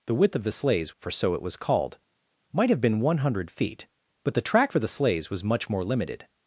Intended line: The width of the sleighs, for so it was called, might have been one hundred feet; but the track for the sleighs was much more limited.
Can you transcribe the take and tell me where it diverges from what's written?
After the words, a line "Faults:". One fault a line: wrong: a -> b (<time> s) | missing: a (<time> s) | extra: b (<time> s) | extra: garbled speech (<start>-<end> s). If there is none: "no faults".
The width of the sleighs, for so it was called, might have been one hundred feet; but the track for the sleighs was much more limited.
Faults:
no faults